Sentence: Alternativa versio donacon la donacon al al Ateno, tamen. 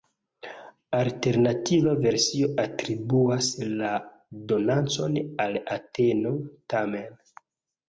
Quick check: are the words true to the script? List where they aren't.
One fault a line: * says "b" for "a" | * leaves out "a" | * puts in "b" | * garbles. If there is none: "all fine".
* says "atribuas" for "donacon"
* leaves out "al"